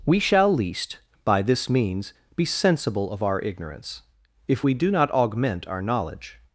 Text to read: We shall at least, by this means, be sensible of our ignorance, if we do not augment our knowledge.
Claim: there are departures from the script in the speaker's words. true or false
true